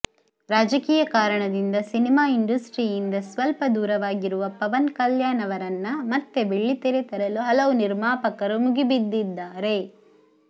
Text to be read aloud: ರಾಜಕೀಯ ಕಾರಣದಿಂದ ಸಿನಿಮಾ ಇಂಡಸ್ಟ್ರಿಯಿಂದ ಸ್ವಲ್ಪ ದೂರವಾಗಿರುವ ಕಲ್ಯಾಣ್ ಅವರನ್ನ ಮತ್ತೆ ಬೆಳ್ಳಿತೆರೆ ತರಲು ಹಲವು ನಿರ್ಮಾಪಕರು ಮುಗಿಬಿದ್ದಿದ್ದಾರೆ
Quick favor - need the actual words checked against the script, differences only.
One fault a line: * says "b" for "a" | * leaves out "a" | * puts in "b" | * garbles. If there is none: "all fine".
* puts in "ಪವನ್"